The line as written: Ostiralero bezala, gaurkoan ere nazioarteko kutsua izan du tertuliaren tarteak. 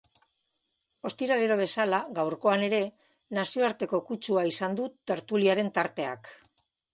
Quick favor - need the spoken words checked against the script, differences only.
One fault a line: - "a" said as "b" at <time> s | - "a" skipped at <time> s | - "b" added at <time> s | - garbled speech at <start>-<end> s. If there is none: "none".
none